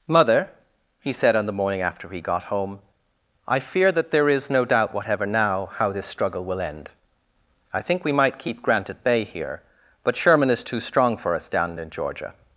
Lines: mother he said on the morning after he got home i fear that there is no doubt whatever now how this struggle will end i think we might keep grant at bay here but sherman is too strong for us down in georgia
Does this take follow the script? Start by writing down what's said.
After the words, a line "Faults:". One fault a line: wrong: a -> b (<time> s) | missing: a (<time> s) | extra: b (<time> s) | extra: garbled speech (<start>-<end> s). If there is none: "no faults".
mother he said on the morning after he got home i fear that there is no doubt whatever now how this struggle will end i think we might keep grant at bay here but sherman is too strong for us down in georgia
Faults:
no faults